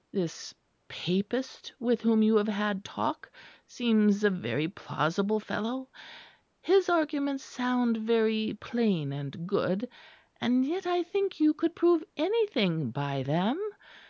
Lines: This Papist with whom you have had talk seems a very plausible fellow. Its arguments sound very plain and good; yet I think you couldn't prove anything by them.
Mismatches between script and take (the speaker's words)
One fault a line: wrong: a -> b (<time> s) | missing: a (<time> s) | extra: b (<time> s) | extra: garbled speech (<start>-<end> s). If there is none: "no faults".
wrong: Its -> His (6.6 s)
extra: and (10.4 s)
wrong: couldn't -> could (11.5 s)